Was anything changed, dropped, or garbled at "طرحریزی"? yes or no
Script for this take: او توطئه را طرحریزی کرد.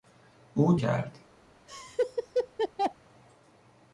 yes